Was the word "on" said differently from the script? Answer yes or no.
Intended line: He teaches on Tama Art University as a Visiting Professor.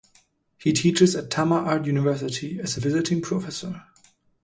yes